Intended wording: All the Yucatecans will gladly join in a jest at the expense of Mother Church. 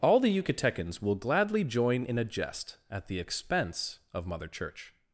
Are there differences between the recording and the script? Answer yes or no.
no